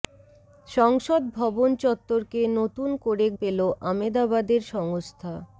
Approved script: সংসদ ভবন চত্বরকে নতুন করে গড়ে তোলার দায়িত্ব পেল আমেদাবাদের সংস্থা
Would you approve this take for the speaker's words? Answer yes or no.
no